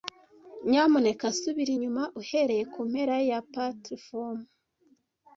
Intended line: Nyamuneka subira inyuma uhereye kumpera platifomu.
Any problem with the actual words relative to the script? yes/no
yes